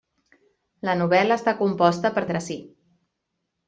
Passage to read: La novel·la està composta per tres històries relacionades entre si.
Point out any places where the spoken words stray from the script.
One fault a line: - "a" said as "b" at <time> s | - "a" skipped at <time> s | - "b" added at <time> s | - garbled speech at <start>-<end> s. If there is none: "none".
- "tres històries relacionades" skipped at 2.2 s